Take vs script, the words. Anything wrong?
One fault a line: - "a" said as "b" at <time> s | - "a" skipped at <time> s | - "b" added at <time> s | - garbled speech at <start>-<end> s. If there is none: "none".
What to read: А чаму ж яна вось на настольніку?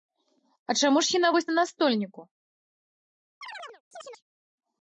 none